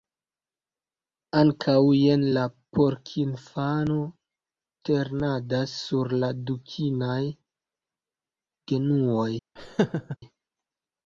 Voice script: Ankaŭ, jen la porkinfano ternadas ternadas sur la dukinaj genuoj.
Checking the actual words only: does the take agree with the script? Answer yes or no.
no